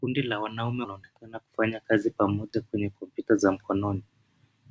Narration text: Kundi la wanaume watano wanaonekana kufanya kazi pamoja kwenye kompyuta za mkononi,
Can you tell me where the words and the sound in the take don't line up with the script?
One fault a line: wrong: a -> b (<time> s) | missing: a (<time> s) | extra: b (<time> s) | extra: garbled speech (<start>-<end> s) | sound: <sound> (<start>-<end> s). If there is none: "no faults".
missing: watano (0.8 s)
sound: dropout (2.5-2.5 s)